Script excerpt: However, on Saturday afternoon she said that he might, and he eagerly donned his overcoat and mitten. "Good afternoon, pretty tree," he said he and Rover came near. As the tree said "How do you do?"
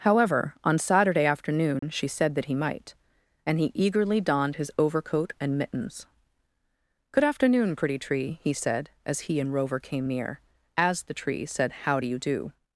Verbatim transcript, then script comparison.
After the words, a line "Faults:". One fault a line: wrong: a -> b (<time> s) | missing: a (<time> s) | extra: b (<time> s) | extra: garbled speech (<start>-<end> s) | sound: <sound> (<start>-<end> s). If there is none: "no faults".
However, on Saturday afternoon she said that he might, and he eagerly donned his overcoat and mittens. "Good afternoon, pretty tree," he said as he and Rover came near. As the tree said "How do you do?"
Faults:
sound: dropout (1.8-1.8 s)
wrong: mitten -> mittens (5.6 s)
extra: as (9.1 s)